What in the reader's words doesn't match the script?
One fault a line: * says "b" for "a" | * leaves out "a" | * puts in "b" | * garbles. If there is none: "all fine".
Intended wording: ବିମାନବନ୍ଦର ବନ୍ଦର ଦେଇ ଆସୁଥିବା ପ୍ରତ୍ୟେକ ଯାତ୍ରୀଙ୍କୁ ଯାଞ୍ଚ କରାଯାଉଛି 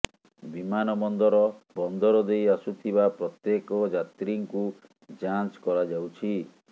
all fine